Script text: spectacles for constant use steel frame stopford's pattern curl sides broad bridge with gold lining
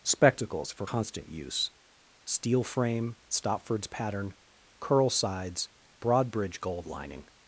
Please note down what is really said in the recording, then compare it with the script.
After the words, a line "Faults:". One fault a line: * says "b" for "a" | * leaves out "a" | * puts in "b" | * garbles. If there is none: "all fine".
spectacles for constant use steel frame stopford's pattern curl sides broad bridge gold lining
Faults:
* leaves out "with"